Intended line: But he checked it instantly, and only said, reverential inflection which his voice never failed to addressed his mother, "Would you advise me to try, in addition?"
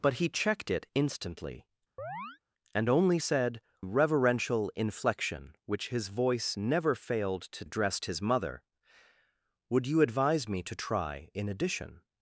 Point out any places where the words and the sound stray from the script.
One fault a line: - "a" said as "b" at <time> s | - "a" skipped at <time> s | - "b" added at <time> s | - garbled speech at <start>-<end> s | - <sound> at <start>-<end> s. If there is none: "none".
- chirp at 2.0-2.4 s